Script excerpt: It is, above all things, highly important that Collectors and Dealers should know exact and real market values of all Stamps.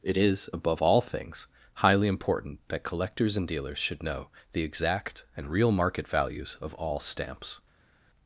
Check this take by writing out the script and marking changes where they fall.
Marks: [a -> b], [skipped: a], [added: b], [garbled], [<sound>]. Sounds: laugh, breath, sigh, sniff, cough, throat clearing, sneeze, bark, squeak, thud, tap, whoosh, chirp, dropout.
It is, above all things, highly important that Collectors and Dealers should know [added: the] exact and real market values of all Stamps.